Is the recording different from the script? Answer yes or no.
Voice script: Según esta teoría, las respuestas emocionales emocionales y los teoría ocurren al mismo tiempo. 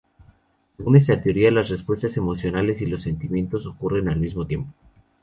yes